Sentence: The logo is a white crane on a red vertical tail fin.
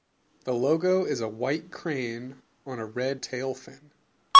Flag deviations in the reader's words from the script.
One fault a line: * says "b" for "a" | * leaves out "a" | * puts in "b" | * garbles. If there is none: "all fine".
* leaves out "vertical"